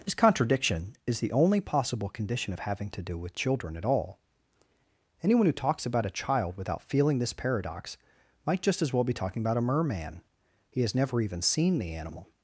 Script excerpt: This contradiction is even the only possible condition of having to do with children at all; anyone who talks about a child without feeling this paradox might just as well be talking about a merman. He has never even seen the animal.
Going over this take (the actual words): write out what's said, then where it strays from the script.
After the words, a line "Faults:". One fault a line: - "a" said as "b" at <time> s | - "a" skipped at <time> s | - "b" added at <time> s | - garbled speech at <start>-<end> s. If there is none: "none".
This contradiction is the only possible condition of having to do with children at all; anyone who talks about a child without feeling this paradox might just as well be talking about a merman. He has never even seen the animal.
Faults:
- "even" skipped at 1.2 s